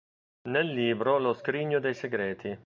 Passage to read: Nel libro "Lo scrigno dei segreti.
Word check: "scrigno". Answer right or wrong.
right